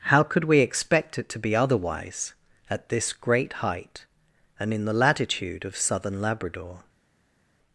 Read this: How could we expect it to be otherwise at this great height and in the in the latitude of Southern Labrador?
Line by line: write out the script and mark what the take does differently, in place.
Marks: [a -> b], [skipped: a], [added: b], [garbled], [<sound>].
How could we expect it to be otherwise at this great height and in the [skipped: in the] latitude of Southern Labrador?